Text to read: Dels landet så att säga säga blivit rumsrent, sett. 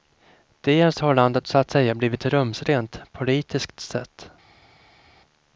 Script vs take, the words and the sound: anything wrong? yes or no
yes